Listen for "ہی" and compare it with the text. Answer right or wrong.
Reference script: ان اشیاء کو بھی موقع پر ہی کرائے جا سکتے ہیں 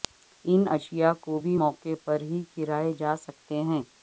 right